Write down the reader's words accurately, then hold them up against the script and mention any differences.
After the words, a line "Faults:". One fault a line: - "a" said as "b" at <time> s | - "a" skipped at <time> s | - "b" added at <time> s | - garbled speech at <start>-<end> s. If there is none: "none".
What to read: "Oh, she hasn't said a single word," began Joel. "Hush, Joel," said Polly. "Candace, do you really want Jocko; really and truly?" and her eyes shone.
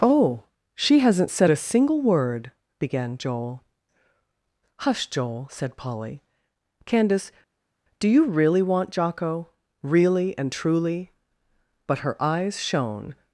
"Oh, she hasn't said a single word," began Joel. "Hush, Joel," said Polly. "Candace, do you really want Jocko; really and truly?" but her eyes shone.
Faults:
- "and" said as "but" at 11.9 s